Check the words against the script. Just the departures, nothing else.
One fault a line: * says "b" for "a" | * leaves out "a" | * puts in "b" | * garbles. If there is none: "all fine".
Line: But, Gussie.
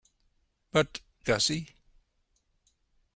all fine